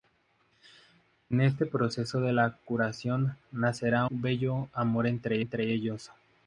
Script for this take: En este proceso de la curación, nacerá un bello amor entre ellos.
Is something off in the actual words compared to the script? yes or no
yes